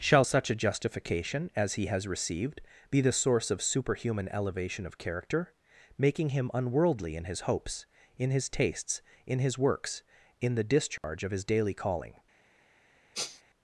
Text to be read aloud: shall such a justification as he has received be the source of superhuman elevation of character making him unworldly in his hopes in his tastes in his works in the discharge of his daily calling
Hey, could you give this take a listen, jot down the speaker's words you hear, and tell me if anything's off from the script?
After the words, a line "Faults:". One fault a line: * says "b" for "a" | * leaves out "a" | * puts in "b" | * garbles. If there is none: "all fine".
shall such a justification as he has received be the source of superhuman elevation of character making him unworldly in his hopes in his tastes in his works in the discharge of his daily calling
Faults:
all fine